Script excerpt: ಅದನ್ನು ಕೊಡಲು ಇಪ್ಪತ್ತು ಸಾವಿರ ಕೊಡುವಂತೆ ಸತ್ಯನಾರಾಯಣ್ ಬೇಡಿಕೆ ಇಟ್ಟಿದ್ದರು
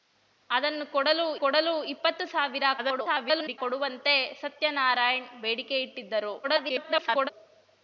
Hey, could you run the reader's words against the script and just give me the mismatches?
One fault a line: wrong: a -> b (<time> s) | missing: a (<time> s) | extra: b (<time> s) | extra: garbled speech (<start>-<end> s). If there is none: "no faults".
extra: ಕೊಡಲು (1.4 s)
extra: garbled speech (2.8-3.6 s)
extra: garbled speech (6.4-7.3 s)